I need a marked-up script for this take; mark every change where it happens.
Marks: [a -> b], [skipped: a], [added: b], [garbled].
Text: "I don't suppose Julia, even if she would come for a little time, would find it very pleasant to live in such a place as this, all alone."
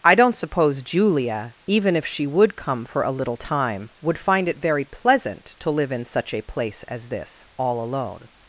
"I don't suppose Julia, even if she would come for a little time, would find it very pleasant to live in such a place as this, all alone."